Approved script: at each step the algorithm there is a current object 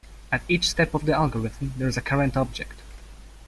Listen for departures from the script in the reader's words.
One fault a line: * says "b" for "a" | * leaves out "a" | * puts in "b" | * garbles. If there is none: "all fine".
* puts in "of"